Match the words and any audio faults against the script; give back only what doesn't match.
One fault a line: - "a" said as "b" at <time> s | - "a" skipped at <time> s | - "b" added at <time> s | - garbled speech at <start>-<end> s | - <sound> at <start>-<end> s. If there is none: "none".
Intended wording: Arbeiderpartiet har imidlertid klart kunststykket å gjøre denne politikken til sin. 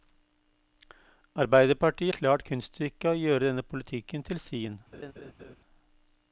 - "har imidlertid" skipped at 2.1 s
- laugh at 4.9-5.6 s